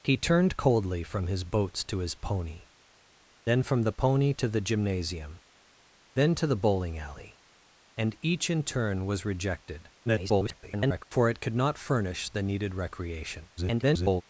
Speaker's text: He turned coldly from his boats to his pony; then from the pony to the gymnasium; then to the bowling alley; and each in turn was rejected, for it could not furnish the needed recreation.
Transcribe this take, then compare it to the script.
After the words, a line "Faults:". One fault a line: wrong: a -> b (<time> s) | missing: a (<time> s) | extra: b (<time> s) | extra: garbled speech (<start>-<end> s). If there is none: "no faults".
He turned coldly from his boats to his pony; then from the pony to the gymnasium; then to the bowling alley; and each in turn was rejected, [garbled] for it could not furnish the needed recreation. [garbled]
Faults:
extra: garbled speech (10.1-11.0 s)
extra: garbled speech (13.6-14.2 s)